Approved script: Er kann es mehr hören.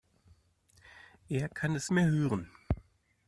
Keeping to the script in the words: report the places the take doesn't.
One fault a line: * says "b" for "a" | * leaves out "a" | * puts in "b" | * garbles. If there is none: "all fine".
all fine